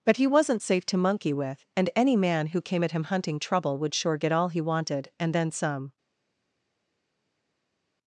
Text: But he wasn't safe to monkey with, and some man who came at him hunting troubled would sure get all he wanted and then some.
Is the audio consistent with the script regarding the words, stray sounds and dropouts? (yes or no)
no